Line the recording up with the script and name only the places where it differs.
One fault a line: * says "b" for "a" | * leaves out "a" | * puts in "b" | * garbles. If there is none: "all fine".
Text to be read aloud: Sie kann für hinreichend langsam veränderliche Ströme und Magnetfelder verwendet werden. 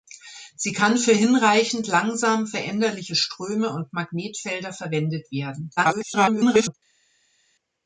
* garbles